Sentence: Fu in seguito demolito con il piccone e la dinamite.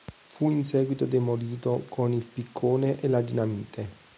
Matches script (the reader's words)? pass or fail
pass